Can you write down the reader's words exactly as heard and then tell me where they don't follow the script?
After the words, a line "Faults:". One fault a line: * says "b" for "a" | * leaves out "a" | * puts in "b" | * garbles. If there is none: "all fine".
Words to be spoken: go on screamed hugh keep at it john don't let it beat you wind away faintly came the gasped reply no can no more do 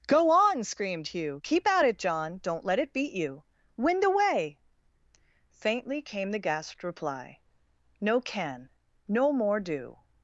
go on screamed hugh keep at it john don't let it beat you wind away faintly came the gasped reply no can no more do
Faults:
all fine